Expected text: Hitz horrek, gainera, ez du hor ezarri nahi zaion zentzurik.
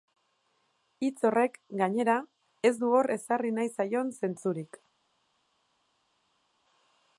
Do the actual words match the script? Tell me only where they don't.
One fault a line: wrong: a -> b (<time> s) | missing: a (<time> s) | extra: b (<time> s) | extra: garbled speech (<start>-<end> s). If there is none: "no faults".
no faults